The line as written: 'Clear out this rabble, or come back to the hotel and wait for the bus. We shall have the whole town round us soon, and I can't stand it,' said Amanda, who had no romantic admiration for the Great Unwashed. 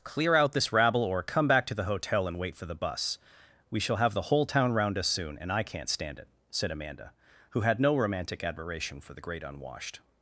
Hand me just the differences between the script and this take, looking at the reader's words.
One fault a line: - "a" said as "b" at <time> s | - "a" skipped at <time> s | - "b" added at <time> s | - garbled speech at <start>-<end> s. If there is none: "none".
none